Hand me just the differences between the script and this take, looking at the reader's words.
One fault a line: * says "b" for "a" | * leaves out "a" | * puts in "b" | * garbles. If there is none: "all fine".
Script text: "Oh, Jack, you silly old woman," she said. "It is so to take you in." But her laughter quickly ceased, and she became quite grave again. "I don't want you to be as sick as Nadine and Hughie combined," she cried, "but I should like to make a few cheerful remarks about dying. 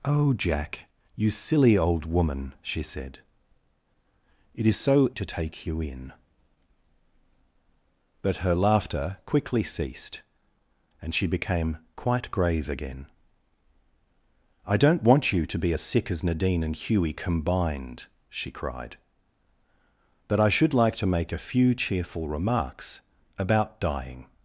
all fine